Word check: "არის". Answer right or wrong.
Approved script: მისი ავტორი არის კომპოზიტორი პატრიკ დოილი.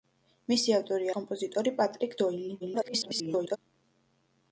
wrong